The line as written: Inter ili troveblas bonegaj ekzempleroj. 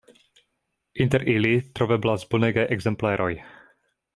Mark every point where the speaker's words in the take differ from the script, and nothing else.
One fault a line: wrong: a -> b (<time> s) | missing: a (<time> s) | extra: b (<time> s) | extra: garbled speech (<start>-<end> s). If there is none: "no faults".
no faults